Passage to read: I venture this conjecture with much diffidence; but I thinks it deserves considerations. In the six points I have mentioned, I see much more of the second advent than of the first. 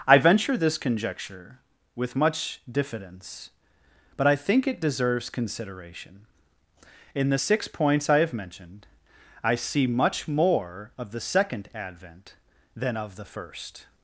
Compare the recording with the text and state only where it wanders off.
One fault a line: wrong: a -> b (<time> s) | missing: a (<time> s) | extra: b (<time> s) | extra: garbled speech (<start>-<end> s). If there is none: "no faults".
wrong: thinks -> think (4.3 s)
wrong: considerations -> consideration (5.3 s)